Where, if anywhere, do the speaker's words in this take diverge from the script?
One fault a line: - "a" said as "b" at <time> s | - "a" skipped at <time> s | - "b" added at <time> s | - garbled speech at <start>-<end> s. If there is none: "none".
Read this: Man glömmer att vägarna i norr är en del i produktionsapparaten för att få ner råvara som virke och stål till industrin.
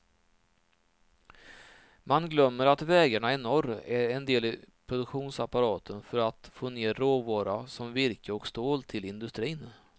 none